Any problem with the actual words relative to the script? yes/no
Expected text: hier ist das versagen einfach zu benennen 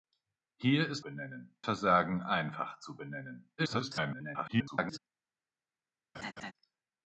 yes